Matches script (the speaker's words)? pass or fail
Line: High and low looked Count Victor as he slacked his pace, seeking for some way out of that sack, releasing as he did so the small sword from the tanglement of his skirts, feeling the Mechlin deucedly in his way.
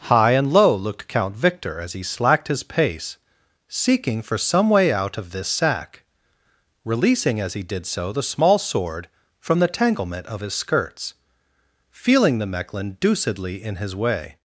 fail